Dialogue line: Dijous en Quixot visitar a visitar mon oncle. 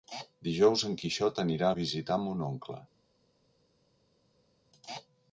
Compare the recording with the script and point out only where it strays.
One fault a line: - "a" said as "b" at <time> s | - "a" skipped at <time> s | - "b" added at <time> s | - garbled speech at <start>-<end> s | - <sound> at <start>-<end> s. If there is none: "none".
- "visitar" said as "anirà" at 1.4 s